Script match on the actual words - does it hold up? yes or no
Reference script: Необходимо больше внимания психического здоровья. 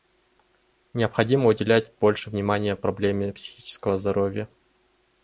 no